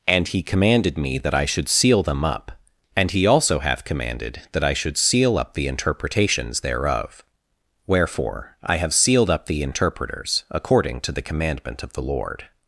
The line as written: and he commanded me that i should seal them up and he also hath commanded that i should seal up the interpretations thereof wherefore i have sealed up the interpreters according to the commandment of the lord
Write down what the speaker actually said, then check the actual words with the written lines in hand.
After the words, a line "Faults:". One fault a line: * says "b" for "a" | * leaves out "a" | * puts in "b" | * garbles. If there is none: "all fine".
and he commanded me that i should seal them up and he also hath commanded that i should seal up the interpretations thereof wherefore i have sealed up the interpreters according to the commandment of the lord
Faults:
all fine